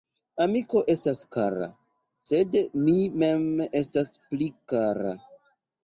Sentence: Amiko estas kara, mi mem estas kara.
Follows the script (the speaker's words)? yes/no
no